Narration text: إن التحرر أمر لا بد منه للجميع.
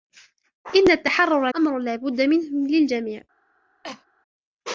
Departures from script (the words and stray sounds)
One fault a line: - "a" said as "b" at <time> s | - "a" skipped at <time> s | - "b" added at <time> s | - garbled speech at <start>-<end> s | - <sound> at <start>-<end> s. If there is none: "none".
- cough at 3.8-4.1 s